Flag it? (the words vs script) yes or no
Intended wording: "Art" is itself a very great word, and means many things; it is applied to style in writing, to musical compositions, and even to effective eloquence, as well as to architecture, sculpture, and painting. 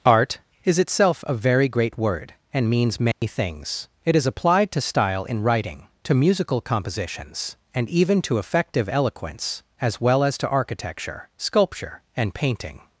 no